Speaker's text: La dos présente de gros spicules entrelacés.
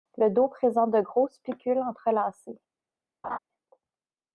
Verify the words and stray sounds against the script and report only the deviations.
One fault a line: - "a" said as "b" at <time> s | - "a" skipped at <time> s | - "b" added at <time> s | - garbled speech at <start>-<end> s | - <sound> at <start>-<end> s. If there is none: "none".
- "La" said as "Le" at 0.2 s
- laugh at 3.2-3.4 s